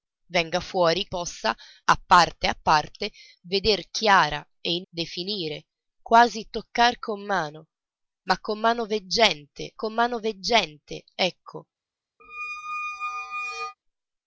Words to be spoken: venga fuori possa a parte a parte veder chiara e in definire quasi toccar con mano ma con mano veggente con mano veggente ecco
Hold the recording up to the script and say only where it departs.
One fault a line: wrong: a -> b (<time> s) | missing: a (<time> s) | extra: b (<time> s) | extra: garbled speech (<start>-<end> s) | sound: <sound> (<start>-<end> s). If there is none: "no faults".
sound: squeak (12.2-13.7 s)